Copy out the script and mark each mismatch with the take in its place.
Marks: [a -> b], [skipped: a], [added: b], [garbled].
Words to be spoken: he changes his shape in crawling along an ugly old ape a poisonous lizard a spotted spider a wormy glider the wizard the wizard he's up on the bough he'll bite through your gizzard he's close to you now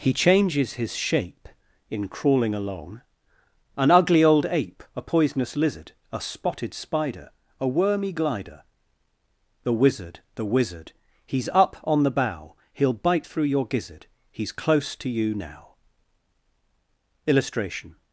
he changes his shape in crawling along an ugly old ape a poisonous lizard a spotted spider a wormy glider the wizard the wizard he's up on the bough he'll bite through your gizzard he's close to you now [added: illustration]